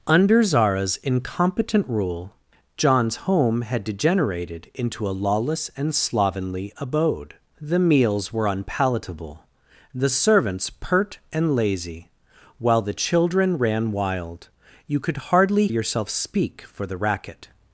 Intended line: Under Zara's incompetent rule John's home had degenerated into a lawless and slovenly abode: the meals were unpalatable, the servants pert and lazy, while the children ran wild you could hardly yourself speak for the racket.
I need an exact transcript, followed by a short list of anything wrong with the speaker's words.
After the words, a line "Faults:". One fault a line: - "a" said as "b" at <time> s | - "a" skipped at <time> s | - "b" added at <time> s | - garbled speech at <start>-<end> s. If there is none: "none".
Under Zara's incompetent rule John's home had degenerated into a lawless and slovenly abode: the meals were unpalatable, the servants pert and lazy, while the children ran wild you could hardly yourself speak for the racket.
Faults:
none